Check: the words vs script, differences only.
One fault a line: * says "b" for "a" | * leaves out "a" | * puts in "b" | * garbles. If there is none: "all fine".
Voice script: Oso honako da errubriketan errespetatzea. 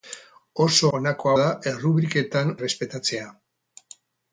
all fine